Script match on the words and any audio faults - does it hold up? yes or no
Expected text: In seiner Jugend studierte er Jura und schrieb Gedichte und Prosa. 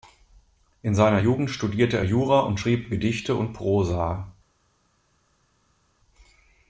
yes